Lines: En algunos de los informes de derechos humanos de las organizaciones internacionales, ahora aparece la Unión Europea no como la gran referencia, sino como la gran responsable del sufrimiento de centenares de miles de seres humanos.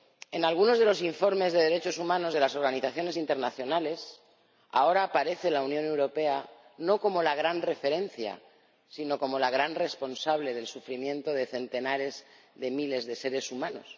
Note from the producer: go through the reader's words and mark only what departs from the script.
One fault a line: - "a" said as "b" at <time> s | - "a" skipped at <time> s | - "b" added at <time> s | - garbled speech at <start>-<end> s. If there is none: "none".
none